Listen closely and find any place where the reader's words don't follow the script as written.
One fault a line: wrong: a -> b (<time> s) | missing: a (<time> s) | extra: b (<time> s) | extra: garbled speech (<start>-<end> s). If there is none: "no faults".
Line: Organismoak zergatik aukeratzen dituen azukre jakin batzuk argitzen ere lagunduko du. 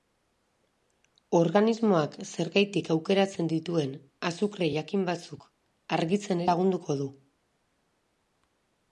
missing: ere (6.4 s)